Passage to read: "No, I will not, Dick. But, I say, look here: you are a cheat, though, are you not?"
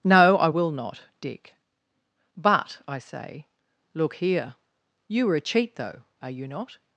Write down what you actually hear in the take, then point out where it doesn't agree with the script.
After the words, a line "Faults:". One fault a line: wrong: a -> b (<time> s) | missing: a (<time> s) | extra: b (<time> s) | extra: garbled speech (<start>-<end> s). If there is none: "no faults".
"No, I will not, Dick. But, I say, look here: you are a cheat, though, are you not?"
Faults:
no faults